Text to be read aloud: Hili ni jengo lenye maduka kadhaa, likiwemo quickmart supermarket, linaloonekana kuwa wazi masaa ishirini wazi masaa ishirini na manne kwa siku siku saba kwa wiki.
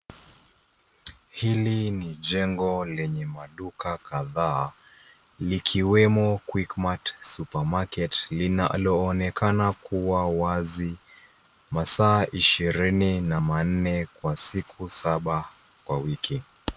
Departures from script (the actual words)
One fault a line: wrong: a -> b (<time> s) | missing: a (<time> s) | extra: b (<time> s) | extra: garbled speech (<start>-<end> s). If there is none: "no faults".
missing: wazi masaa ishirini (13.2 s)
missing: siku (14.9 s)